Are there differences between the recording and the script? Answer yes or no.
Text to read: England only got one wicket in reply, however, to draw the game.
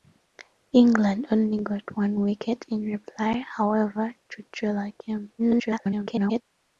yes